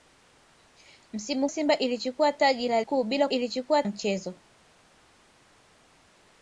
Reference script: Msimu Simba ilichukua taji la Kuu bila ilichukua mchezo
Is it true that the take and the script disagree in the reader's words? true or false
false